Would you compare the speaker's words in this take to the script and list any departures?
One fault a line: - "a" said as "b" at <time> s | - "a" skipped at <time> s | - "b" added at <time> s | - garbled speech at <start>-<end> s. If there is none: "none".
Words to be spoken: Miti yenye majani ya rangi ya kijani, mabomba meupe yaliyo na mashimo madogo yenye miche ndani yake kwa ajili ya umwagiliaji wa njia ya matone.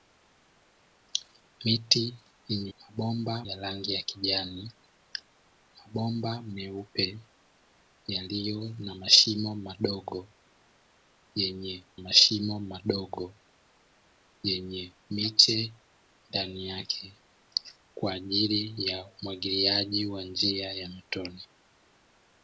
- "majani" said as "mabomba" at 2.8 s
- "mashimo madogo yenye" added at 12.0 s